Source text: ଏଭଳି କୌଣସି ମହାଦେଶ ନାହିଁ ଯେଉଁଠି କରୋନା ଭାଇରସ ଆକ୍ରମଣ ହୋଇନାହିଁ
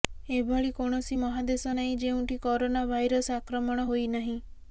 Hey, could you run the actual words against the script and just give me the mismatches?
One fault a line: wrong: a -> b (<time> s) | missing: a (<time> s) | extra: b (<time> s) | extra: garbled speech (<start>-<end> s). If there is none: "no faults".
no faults